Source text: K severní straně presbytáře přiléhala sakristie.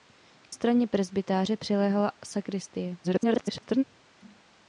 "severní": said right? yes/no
no